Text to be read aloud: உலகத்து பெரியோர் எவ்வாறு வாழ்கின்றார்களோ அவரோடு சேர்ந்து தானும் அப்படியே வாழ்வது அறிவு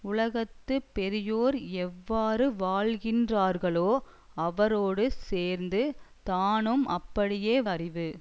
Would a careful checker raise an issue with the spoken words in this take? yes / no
yes